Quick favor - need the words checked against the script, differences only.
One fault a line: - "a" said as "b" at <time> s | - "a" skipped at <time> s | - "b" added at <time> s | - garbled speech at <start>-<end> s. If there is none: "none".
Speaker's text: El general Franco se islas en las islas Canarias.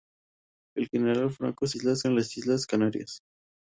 none